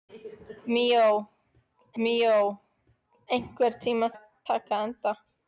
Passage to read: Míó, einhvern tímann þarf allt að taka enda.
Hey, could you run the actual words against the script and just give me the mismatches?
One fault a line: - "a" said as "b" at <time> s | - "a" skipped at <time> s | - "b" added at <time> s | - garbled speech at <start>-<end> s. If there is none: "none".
- "míó" added at 2.0 s
- "þarf allt" skipped at 4.1 s